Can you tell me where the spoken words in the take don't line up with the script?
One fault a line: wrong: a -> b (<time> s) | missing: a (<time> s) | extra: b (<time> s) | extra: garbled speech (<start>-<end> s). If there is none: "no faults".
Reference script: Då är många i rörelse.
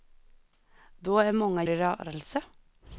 no faults